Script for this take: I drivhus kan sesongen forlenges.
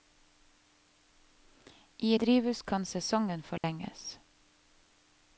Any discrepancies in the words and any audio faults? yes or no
yes